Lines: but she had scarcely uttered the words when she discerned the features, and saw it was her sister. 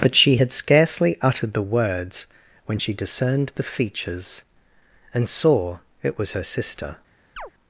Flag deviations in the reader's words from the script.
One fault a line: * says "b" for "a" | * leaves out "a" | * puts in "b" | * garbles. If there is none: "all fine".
all fine